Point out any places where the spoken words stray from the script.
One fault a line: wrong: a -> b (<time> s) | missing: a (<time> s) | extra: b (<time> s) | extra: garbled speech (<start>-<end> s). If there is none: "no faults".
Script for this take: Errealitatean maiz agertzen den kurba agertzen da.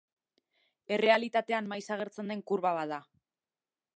wrong: agertzen -> bat (2.8 s)